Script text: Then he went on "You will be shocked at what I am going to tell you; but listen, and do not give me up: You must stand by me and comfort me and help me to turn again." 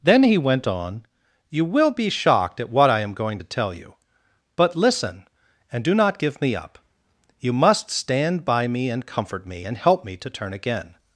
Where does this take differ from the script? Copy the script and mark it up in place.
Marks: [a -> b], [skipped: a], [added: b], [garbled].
Then he went on "You will be shocked at what I am going to tell you; but listen, and do not give me up: You must stand by me and comfort me and help me to turn again."